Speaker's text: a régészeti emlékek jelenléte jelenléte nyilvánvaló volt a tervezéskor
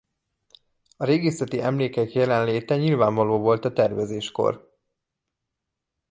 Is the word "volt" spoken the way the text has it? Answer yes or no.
yes